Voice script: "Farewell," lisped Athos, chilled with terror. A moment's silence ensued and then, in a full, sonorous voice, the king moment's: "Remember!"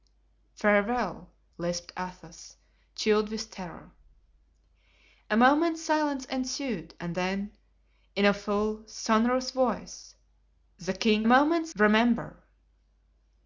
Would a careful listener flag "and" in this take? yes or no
no